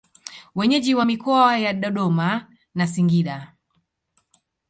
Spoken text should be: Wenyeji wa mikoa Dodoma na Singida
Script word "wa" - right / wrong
right